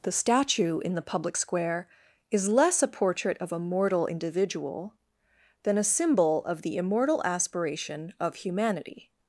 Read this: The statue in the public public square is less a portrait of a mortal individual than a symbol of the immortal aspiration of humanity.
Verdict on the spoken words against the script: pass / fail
fail